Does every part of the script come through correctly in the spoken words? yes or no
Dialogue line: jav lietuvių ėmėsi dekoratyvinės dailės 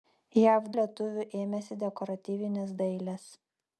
yes